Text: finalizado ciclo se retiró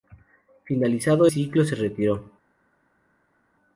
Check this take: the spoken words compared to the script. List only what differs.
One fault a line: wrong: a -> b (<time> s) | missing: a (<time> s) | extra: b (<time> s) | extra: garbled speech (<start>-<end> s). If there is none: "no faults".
no faults